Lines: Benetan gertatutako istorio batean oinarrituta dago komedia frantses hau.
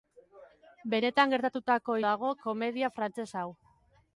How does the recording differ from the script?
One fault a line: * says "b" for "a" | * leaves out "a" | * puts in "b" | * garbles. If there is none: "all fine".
* leaves out "istorio batean oinarrituta"